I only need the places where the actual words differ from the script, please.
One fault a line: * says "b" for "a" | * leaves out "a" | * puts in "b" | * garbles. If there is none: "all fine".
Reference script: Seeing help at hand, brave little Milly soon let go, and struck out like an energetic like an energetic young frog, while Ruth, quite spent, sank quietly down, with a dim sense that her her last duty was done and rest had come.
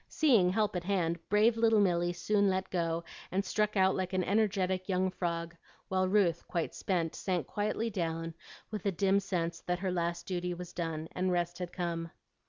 * leaves out "like an energetic"
* leaves out "her"